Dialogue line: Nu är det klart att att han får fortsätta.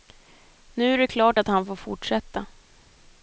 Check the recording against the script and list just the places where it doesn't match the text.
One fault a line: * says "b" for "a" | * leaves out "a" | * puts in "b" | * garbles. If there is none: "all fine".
* leaves out "att"